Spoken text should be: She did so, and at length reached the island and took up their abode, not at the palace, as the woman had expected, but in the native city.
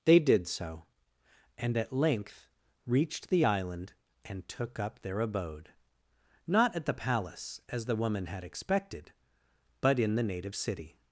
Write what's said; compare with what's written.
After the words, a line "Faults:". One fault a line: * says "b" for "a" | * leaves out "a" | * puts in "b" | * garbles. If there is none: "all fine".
They did so, and at length reached the island and took up their abode, not at the palace, as the woman had expected, but in the native city.
Faults:
* says "They" for "She"